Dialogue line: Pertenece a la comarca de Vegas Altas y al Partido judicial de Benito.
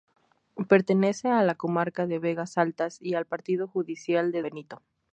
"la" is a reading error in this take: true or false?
false